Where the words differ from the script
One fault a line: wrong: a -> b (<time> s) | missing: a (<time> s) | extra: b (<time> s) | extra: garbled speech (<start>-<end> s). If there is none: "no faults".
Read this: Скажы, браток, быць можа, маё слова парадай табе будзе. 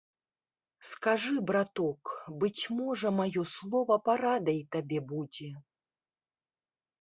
no faults